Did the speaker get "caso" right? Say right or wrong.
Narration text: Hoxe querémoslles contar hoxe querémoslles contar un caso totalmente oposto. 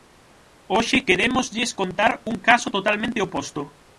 right